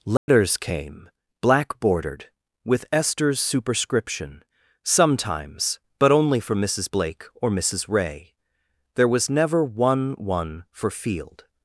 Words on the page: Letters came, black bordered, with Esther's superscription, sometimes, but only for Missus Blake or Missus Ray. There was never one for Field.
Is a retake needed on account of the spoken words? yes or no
yes